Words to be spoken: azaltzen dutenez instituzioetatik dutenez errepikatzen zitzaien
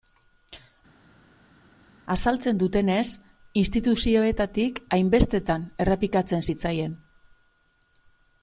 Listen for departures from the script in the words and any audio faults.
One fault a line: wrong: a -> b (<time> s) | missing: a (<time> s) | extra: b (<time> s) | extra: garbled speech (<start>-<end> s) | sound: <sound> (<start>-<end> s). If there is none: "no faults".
wrong: dutenez -> hainbestetan (5.0 s)